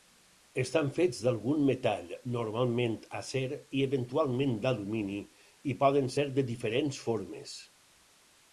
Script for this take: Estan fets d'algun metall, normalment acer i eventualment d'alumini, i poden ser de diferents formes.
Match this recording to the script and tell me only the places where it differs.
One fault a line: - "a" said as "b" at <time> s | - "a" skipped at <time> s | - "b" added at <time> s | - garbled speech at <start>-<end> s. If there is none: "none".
none